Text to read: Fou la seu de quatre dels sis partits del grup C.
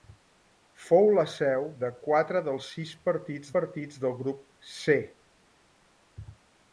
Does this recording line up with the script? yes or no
no